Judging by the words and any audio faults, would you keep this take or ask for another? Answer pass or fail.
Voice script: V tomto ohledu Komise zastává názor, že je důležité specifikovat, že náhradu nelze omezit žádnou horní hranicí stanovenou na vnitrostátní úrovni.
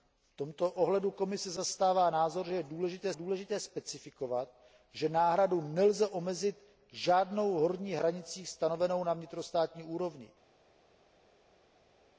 fail